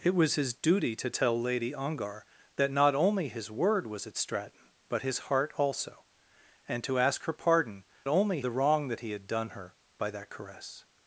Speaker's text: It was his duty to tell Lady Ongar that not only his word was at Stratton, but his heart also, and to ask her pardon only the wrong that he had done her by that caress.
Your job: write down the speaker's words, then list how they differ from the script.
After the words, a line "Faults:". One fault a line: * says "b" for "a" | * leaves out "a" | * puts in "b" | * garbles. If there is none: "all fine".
It was his duty to tell Lady Ongar that not only his word was at Stratton, but his heart also, and to ask her pardon only the wrong that he had done her by that caress.
Faults:
all fine